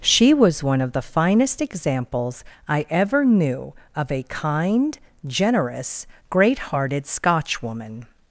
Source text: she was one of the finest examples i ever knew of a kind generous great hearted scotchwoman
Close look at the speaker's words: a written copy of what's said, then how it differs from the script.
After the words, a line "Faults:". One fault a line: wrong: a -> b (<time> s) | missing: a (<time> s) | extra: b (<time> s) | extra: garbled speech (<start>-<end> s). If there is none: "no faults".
she was one of the finest examples i ever knew of a kind generous great hearted scotchwoman
Faults:
no faults